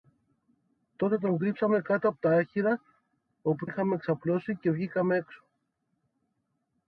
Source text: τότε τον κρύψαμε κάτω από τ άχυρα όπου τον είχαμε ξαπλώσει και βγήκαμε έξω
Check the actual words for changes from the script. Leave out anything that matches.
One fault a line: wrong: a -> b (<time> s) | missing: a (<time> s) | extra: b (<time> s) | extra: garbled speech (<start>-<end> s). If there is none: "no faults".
missing: τον (3.6 s)